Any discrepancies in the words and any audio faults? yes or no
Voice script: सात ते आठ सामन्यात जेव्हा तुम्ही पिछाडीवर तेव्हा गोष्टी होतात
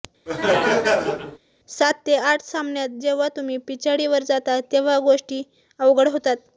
yes